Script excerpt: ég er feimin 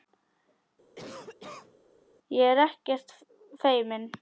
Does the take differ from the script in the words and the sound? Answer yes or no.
yes